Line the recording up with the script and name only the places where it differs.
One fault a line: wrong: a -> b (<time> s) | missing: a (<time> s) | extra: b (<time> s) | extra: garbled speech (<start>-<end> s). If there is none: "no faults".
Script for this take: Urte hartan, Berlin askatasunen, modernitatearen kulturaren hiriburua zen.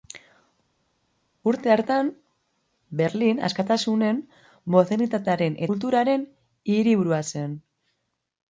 no faults